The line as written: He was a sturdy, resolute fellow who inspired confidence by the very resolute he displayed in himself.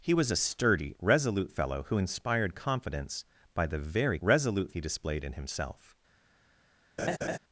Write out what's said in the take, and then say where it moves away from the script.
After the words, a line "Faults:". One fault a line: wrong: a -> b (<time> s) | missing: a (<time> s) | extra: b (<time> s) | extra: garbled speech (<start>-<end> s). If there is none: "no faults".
He was a sturdy, resolute fellow who inspired confidence by the very resolute he displayed in himself.
Faults:
no faults